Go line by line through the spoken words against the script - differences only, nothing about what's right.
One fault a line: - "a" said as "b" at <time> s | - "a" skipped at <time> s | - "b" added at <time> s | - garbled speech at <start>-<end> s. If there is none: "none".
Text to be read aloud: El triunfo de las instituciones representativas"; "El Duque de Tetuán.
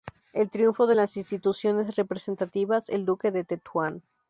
none